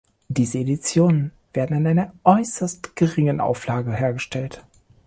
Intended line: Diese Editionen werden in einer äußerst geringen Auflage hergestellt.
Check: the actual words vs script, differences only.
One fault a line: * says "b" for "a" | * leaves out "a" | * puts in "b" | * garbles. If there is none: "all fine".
all fine